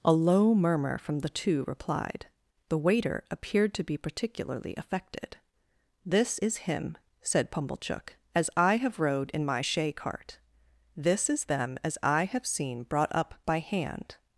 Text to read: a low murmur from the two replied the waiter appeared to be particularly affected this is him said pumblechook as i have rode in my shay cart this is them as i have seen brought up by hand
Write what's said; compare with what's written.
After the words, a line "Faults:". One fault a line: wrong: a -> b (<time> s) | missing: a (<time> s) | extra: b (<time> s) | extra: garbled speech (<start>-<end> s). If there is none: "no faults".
a low murmur from the two replied the waiter appeared to be particularly affected this is him said pumblechook as i have rode in my shay cart this is them as i have seen brought up by hand
Faults:
no faults